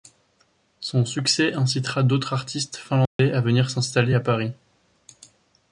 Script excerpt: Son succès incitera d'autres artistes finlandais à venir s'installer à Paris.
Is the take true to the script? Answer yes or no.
yes